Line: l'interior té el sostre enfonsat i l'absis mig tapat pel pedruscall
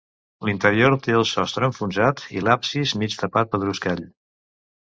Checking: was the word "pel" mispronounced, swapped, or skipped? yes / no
yes